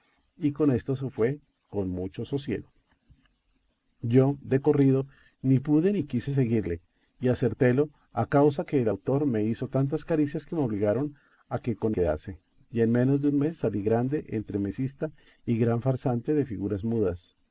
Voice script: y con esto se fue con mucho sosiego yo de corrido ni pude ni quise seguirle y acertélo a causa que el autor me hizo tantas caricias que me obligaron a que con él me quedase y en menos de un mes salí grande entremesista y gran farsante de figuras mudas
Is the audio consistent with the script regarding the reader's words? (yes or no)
no